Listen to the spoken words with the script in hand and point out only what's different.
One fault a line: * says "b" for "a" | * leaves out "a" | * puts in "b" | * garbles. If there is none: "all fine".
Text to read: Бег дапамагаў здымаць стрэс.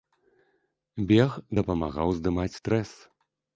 all fine